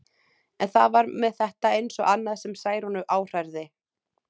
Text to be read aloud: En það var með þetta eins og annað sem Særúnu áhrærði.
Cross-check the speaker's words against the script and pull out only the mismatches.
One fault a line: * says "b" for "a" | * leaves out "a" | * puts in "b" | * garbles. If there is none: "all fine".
all fine